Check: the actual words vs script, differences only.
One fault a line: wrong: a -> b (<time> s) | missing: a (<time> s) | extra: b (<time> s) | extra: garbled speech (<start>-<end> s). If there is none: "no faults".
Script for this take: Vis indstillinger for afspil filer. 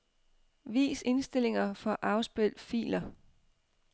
no faults